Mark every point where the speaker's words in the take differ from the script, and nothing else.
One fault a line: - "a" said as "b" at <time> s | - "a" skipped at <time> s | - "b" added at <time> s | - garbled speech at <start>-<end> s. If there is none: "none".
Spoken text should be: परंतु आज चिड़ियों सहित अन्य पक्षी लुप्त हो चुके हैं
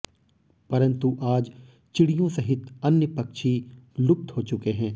none